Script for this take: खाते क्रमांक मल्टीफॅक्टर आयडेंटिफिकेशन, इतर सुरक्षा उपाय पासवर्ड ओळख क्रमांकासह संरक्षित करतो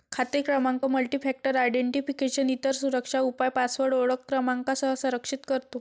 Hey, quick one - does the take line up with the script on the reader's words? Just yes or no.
yes